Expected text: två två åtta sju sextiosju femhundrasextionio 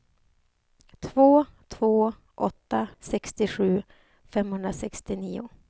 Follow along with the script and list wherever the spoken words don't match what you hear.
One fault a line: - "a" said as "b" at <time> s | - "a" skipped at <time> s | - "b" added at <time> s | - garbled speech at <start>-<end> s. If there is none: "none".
- "sju" skipped at 2.9 s